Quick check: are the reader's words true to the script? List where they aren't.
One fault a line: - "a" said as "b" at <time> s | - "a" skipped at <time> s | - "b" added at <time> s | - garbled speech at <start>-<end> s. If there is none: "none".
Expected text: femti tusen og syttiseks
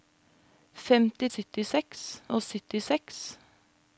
- "tusen" said as "syttiseks" at 1.3 s